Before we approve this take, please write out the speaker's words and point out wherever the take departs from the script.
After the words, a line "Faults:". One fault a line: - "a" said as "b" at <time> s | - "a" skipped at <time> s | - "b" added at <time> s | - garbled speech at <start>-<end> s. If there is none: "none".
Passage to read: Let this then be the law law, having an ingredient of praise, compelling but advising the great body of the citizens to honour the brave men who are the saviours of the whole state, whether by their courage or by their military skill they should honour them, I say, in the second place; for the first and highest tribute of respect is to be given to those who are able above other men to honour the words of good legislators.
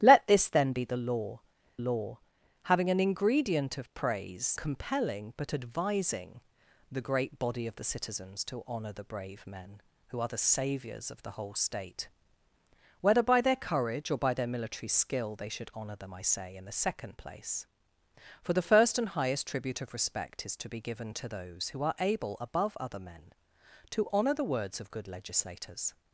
Let this then be the law law, having an ingredient of praise, compelling but advising the great body of the citizens to honour the brave men who are the saviours of the whole state, whether by their courage or by their military skill they should honour them, I say, in the second place; for the first and highest tribute of respect is to be given to those who are able above other men to honour the words of good legislators.
Faults:
none